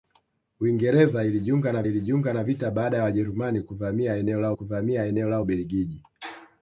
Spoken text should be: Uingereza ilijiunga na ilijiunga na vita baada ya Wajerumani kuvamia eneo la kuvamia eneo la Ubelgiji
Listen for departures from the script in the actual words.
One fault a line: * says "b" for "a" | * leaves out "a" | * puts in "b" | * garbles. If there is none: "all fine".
all fine